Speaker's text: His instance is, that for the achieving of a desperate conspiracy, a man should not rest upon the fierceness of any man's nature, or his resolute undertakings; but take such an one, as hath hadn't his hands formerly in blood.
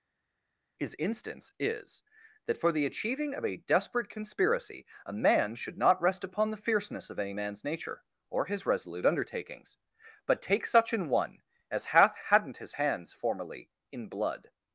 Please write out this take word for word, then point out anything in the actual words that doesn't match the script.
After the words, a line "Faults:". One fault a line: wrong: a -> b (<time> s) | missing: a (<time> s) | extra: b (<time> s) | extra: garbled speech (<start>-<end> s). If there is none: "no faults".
His instance is, that for the achieving of a desperate conspiracy, a man should not rest upon the fierceness of any man's nature, or his resolute undertakings; but take such an one, as hath hadn't his hands formerly in blood.
Faults:
no faults